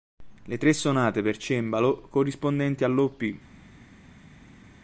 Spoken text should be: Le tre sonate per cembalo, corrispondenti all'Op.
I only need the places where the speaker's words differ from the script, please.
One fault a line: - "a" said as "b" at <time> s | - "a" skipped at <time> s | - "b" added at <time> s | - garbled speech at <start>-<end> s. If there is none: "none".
none